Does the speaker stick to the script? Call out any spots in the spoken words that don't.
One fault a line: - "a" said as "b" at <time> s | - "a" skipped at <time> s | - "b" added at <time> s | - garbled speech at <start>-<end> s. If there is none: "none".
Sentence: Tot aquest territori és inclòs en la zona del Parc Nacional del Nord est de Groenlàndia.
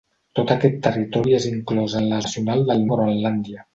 - "zona del Parc" skipped at 2.2 s
- "Nord est" skipped at 2.9 s